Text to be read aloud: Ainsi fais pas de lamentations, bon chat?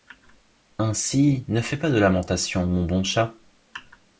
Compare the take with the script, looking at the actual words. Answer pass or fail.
fail